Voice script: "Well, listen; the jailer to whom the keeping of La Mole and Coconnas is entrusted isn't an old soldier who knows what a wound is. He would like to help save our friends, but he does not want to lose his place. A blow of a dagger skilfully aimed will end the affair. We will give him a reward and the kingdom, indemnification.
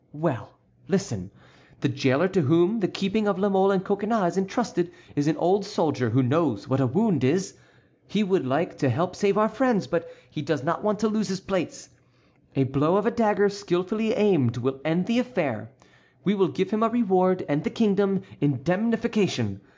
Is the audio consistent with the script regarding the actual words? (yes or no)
no